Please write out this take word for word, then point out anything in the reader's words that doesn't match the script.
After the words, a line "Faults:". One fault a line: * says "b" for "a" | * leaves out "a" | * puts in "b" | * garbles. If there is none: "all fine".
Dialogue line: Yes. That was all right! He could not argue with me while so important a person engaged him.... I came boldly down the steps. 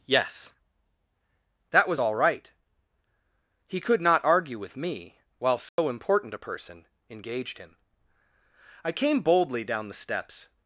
Yes. That was all right! He could not argue with me while so important a person engaged him.... I came boldly down the steps.
Faults:
all fine